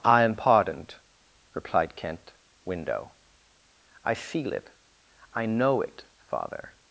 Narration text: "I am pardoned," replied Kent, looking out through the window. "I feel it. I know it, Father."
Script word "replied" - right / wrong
right